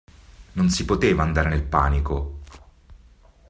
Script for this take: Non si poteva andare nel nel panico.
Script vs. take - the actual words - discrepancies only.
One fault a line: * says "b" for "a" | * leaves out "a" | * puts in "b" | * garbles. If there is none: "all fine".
* leaves out "nel"